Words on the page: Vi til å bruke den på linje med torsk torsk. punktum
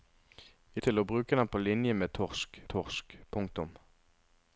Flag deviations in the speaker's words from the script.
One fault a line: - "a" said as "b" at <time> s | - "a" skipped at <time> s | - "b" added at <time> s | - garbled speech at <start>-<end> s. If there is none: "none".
none